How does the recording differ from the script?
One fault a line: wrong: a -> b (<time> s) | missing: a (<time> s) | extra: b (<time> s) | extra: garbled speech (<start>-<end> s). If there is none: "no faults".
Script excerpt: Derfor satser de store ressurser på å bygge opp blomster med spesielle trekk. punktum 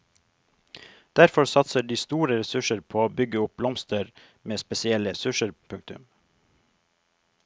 wrong: trekk -> ressurser (5.1 s)